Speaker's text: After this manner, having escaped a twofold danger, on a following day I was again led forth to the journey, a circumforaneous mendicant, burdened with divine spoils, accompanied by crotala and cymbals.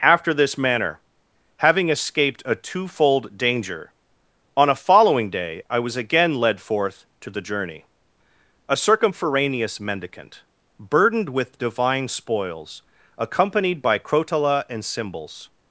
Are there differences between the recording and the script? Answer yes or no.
no